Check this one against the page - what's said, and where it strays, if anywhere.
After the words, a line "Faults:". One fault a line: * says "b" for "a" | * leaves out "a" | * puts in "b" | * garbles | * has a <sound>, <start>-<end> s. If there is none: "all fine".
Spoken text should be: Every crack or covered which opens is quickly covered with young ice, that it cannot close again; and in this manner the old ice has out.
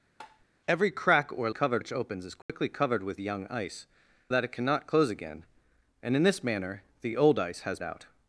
Every crack or covered which opens is quickly covered with young ice, that it cannot close again; and in this manner the old ice has out.
Faults:
* has a tap, 0.2-0.5 s
* has a dropout, 2.4-2.5 s